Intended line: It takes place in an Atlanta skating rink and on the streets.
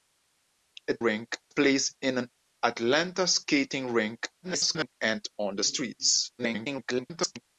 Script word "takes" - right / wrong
wrong